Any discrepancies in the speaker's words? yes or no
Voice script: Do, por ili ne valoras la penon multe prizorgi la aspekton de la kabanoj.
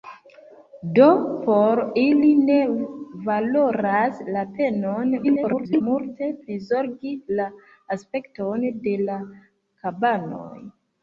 yes